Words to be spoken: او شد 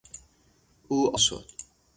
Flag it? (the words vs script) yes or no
no